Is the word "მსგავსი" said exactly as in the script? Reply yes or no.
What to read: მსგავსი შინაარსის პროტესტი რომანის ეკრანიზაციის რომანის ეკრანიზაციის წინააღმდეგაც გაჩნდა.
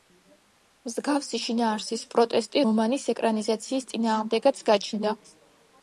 yes